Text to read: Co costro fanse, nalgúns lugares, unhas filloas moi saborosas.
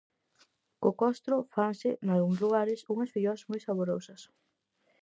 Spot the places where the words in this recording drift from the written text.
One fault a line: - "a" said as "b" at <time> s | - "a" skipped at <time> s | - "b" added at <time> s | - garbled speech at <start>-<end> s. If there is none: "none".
none